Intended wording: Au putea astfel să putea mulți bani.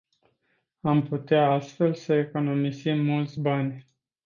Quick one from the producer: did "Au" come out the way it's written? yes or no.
no